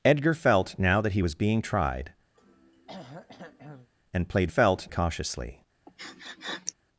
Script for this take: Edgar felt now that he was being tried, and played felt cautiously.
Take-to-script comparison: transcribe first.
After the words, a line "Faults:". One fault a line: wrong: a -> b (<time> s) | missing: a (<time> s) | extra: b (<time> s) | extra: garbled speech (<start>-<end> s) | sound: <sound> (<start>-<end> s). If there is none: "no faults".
Edgar felt now that he was being tried, and played felt cautiously.
Faults:
sound: throat clearing (2.3-3.9 s)
sound: sniff (5.9-6.7 s)